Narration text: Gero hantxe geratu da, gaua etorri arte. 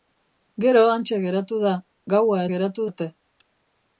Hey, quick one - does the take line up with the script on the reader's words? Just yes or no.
no